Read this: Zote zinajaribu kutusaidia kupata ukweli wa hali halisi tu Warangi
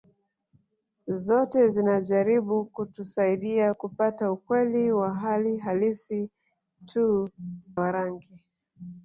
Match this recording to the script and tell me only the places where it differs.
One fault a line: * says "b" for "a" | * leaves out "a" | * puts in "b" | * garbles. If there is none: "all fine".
all fine